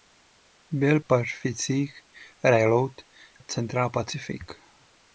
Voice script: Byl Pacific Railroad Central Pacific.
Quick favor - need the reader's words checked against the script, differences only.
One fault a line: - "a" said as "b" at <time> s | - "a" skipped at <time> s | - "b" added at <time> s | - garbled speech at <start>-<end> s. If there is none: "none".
none